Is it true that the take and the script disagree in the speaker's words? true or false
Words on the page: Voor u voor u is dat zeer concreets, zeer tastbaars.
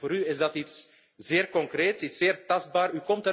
true